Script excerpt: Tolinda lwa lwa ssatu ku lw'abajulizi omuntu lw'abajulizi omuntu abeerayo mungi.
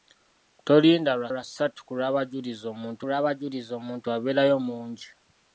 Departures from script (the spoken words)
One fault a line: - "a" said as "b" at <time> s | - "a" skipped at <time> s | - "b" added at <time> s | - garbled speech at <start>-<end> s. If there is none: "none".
none